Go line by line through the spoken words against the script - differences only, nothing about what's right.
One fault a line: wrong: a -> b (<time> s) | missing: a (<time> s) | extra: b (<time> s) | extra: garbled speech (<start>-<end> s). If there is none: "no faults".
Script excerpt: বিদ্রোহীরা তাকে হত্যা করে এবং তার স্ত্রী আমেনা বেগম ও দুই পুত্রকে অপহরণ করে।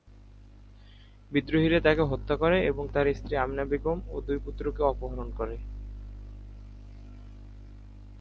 no faults